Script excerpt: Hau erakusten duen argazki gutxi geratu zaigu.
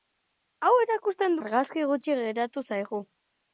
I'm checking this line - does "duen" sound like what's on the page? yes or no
no